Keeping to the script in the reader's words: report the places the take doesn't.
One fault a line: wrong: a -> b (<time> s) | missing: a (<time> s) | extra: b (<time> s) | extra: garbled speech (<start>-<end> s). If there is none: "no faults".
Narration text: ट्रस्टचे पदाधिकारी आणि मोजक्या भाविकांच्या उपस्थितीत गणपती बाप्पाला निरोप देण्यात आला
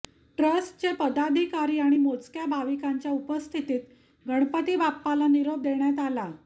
no faults